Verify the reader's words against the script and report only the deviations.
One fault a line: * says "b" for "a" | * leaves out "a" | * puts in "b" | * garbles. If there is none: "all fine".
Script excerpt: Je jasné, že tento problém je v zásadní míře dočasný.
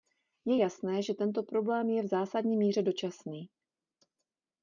all fine